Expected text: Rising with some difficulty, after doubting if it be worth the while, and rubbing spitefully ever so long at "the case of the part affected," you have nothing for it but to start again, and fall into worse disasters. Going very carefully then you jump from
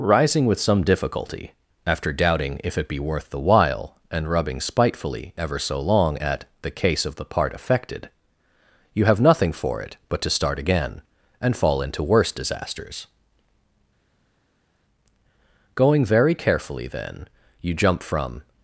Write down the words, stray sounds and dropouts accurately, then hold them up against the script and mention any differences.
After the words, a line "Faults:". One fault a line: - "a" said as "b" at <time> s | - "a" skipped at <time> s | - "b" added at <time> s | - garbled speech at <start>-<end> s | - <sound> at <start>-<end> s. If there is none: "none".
Rising with some difficulty, after doubting if it be worth the while, and rubbing spitefully ever so long at "the case of the part affected," you have nothing for it but to start again, and fall into worse disasters. Going very carefully then you jump from
Faults:
none